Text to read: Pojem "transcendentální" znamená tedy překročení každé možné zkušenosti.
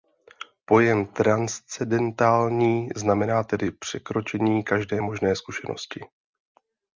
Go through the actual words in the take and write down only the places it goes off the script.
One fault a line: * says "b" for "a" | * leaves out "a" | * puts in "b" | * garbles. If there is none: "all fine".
all fine